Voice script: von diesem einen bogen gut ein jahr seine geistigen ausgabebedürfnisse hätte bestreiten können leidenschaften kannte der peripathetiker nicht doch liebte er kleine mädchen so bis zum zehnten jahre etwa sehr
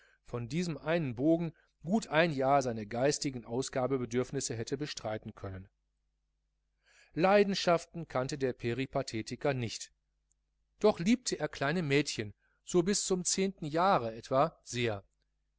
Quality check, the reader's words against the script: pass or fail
pass